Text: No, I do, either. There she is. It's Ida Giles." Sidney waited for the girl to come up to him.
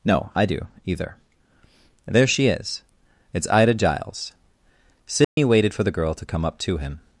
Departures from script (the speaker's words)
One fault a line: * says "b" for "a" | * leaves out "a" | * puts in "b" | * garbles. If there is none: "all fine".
all fine